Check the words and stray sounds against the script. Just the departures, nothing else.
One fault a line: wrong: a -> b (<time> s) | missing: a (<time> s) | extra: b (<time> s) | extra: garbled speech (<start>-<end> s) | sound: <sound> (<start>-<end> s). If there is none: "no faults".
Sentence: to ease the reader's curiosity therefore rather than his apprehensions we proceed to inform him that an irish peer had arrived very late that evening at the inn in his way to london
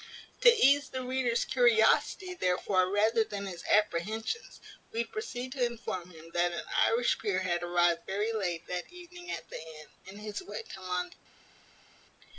no faults